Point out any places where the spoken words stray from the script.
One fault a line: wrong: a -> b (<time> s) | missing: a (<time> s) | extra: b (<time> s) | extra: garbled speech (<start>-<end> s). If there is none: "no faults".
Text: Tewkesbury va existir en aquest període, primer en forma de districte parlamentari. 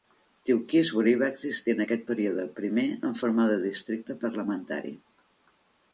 no faults